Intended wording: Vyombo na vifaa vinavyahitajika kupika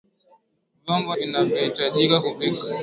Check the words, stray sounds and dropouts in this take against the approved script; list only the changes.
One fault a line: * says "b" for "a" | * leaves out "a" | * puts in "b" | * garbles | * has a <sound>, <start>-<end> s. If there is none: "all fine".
* leaves out "na vifaa"